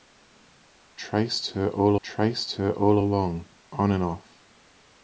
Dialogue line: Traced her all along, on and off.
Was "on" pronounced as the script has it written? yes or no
yes